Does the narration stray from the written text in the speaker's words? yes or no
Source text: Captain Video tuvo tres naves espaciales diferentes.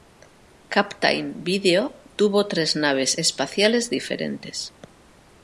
no